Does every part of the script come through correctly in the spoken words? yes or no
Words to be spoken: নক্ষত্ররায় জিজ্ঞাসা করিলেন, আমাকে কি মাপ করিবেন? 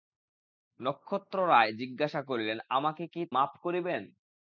yes